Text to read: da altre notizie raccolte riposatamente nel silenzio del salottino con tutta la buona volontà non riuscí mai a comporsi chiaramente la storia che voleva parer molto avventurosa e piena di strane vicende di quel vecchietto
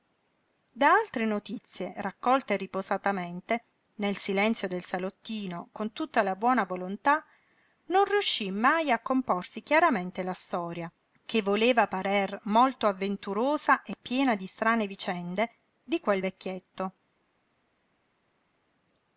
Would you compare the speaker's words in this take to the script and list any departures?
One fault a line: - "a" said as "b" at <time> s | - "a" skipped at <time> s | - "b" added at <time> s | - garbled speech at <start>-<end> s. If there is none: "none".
none